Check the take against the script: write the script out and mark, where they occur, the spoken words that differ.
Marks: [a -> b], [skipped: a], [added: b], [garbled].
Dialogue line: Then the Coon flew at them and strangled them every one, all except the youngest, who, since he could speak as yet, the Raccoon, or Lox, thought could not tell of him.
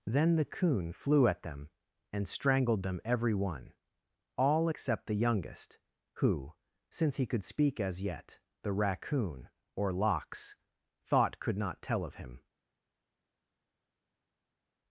Then the Coon flew at them and strangled them every one, all except the youngest, who, since he could speak as yet, the Raccoon, or Lox, thought could not tell of him.